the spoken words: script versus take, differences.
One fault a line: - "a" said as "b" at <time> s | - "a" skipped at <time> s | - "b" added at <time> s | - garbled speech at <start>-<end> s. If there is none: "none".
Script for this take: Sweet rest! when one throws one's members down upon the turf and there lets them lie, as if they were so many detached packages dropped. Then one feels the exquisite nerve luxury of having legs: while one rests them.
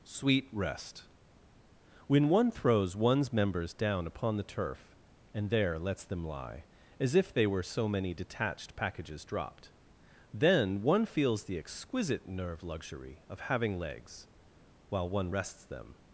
none